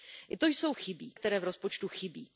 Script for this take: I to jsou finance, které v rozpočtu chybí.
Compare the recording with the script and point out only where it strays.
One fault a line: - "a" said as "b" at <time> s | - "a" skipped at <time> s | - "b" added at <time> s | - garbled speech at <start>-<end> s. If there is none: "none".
- "finance" said as "chybí" at 0.7 s